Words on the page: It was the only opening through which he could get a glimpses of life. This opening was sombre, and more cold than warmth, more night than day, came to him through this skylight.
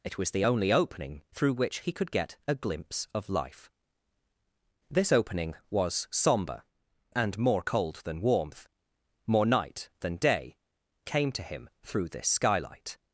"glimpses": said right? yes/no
no